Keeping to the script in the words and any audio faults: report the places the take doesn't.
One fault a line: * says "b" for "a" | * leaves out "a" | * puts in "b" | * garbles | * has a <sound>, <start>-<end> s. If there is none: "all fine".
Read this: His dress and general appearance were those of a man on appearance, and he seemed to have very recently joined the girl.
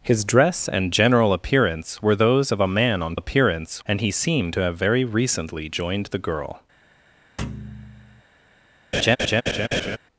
* has a thud, 7.4-8.2 s
* has a laugh, 8.9-10.0 s